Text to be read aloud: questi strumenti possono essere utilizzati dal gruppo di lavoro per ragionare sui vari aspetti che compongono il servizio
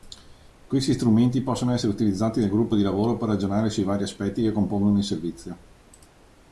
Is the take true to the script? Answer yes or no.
yes